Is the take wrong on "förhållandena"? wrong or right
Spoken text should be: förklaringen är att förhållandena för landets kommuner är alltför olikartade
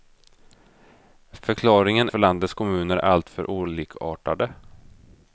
wrong